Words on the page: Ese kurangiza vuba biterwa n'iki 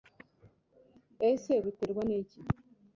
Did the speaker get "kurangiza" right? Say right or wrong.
wrong